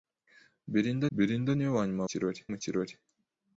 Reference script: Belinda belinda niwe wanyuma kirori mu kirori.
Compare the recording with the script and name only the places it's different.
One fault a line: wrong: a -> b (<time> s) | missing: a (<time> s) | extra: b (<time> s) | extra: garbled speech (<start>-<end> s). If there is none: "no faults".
no faults